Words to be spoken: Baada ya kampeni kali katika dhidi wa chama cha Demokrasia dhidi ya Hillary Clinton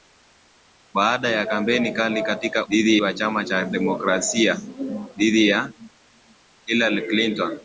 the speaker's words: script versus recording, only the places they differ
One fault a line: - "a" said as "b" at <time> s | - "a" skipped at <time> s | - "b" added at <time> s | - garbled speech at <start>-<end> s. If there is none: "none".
none